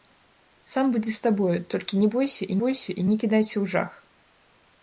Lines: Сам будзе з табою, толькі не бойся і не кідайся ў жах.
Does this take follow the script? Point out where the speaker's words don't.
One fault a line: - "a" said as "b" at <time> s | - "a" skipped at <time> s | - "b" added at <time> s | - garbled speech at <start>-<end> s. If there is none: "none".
- "бойся і" added at 2.7 s